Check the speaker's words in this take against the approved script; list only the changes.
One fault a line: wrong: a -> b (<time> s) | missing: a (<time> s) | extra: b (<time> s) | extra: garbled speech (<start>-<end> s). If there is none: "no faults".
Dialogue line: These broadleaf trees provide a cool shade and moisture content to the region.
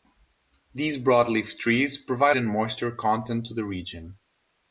missing: a cool shade (2.4 s)